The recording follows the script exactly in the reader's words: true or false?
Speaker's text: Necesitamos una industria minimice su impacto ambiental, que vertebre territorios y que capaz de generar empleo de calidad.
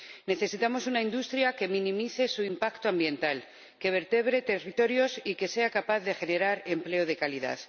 false